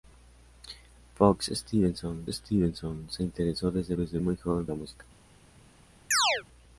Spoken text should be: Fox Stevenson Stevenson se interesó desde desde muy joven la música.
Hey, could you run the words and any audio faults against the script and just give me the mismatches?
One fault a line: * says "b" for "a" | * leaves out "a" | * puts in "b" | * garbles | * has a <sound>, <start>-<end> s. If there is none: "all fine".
* has a chirp, 6.1-6.4 s